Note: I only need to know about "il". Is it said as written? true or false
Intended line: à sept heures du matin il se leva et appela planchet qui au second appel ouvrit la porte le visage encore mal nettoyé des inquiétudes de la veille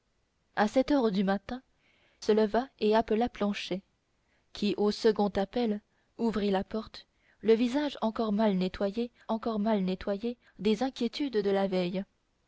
false